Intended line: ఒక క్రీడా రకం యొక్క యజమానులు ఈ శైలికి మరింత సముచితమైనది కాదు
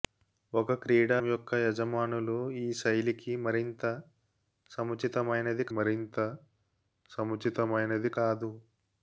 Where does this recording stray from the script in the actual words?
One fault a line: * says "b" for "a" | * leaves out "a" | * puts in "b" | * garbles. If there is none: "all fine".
* leaves out "రకం"
* puts in "మరింత సముచితమైనది"